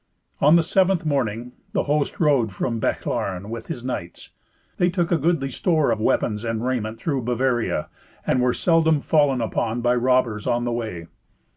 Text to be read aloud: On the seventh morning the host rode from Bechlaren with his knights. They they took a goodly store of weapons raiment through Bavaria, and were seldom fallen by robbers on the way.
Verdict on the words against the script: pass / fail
fail